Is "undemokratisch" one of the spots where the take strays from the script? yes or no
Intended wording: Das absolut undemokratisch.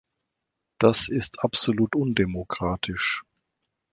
no